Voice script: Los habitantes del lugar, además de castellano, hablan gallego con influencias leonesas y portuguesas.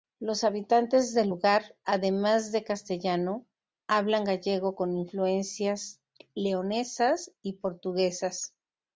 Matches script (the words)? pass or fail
pass